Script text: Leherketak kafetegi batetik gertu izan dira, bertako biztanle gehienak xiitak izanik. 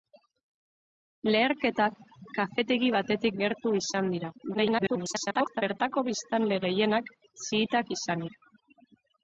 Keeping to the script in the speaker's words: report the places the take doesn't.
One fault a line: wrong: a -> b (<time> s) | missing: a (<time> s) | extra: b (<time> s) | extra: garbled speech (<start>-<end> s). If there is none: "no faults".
extra: garbled speech (4.5-5.6 s)